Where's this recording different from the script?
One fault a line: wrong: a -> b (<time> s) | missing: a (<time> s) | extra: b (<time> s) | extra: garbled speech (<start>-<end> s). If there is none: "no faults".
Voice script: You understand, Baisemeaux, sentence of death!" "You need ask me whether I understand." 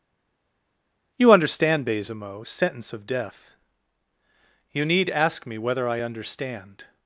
no faults